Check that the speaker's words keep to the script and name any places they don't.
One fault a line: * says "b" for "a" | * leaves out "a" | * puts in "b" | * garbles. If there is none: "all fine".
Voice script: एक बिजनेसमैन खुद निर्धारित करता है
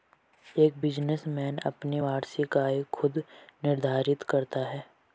* puts in "अपनी वार्षिक आय"